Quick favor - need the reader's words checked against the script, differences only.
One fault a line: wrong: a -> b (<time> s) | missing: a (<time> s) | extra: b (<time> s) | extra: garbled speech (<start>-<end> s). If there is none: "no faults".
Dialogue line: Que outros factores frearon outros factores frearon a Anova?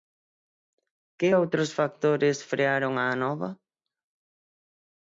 missing: outros factores frearon (2.9 s)